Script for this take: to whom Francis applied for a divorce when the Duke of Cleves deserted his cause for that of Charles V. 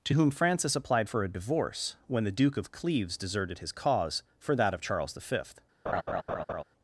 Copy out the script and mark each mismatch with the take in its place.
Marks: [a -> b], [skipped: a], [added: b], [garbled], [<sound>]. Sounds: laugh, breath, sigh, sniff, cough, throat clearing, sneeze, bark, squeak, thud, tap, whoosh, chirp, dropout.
to whom Francis applied for a divorce when the Duke of Cleves deserted his cause for that of Charles V. [laugh]